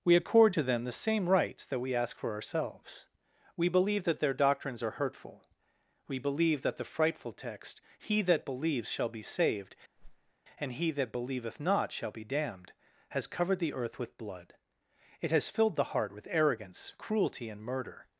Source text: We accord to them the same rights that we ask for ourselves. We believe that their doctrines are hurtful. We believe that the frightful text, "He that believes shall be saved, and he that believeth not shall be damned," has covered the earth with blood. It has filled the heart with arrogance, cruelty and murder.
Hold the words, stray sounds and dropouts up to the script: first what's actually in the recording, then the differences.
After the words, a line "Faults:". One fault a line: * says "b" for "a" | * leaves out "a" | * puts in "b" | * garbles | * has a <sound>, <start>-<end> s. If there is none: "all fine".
We accord to them the same rights that we ask for ourselves. We believe that their doctrines are hurtful. We believe that the frightful text, "He that believes shall be saved, and he that believeth not shall be damned," has covered the earth with blood. It has filled the heart with arrogance, cruelty and murder.
Faults:
* has a whoosh, 10.0-10.3 s